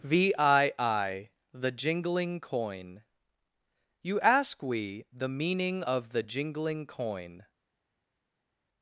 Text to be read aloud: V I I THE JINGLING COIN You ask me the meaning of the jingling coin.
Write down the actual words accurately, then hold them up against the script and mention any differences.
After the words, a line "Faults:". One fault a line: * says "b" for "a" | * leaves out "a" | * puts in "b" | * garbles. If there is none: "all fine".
V I I THE JINGLING COIN You ask we the meaning of the jingling coin.
Faults:
* says "we" for "me"